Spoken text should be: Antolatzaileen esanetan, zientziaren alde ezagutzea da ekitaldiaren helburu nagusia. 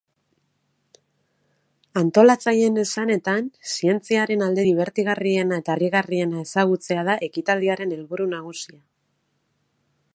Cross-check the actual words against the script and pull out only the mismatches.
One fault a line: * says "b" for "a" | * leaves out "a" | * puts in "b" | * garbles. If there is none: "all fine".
* puts in "dibertigarriena eta harrigarriena"